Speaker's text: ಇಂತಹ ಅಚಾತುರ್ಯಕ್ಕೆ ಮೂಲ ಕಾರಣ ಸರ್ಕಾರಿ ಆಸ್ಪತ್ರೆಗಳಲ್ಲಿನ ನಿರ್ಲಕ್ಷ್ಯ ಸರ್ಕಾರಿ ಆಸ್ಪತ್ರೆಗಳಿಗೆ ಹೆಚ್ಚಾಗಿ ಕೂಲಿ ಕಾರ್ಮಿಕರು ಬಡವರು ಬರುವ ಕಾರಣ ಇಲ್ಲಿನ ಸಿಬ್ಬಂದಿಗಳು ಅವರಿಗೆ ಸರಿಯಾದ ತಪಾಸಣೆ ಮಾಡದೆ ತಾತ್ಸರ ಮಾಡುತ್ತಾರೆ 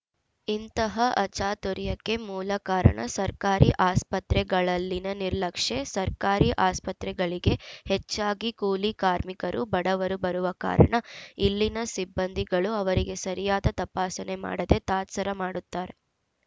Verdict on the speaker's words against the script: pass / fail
pass